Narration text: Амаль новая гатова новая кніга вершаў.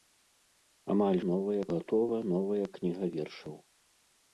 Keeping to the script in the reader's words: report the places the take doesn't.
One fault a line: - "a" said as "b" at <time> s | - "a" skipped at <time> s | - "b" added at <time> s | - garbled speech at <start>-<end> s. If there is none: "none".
none